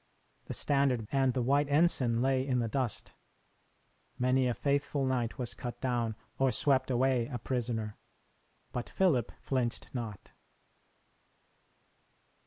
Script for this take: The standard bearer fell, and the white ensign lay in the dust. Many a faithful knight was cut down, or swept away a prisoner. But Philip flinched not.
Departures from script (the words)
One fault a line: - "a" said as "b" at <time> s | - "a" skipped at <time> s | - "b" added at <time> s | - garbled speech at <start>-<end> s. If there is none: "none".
- "bearer fell" skipped at 1.1 s